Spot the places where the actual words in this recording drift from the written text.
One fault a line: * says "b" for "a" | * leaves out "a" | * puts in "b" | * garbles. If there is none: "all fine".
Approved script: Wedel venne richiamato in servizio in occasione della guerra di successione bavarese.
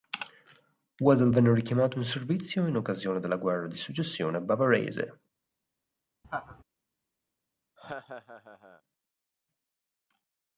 all fine